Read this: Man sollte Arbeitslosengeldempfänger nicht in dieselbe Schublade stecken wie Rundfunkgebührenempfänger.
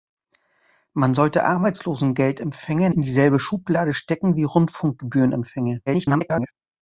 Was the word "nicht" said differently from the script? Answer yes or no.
yes